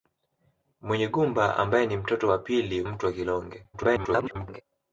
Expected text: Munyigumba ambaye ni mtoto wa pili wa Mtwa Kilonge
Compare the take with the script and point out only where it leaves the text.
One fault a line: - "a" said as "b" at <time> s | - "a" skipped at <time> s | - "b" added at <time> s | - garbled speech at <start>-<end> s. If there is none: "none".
- "wa" skipped at 2.8 s
- garbled speech at 3.7-4.6 s